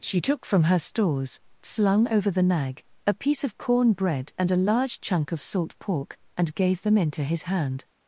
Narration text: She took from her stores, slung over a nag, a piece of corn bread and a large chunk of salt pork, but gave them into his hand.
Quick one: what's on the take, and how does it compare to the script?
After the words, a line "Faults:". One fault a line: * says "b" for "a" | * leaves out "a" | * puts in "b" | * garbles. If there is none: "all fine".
She took from her stores, slung over the nag, a piece of corn bread and a large chunk of salt pork, and gave them into his hand.
Faults:
* says "the" for "a"
* says "and" for "but"